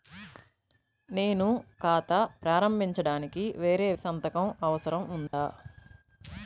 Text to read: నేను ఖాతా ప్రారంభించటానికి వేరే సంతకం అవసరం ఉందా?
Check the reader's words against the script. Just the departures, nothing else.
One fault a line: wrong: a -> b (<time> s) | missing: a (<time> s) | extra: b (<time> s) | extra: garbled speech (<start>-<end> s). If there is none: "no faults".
no faults